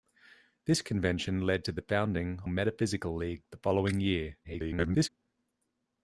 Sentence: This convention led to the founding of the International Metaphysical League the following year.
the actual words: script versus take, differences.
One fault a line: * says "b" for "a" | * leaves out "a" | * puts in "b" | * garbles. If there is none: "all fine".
* leaves out "of the International"
* garbles